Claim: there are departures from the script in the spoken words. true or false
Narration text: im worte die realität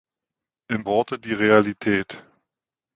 false